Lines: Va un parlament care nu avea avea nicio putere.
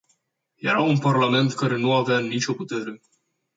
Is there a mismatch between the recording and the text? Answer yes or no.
yes